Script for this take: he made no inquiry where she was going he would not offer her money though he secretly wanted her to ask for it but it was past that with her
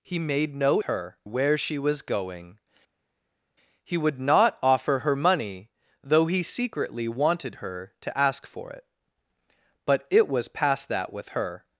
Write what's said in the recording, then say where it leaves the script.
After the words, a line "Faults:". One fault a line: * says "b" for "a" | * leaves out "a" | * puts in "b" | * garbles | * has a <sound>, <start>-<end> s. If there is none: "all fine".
he made no her where she was going he would not offer her money though he secretly wanted her to ask for it but it was past that with her
Faults:
* says "her" for "inquiry"